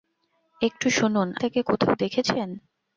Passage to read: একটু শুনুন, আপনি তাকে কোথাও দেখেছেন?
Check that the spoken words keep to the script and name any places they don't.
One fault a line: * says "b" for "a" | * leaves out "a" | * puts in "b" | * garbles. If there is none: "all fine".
* leaves out "আপনি"